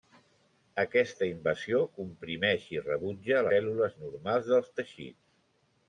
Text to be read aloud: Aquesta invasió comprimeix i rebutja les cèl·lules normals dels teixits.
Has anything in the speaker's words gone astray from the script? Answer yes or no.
yes